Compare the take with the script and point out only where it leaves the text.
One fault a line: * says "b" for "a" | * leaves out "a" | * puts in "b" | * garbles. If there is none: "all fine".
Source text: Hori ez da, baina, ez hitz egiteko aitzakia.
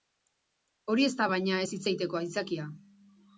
all fine